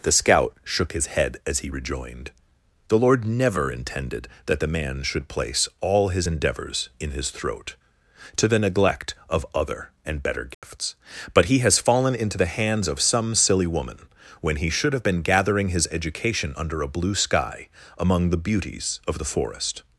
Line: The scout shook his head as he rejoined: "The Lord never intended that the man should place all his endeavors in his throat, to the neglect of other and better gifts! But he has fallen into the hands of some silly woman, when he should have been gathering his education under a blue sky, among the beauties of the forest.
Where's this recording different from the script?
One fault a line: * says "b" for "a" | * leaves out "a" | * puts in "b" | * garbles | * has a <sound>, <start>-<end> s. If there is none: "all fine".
* has a dropout, 10.5-10.6 s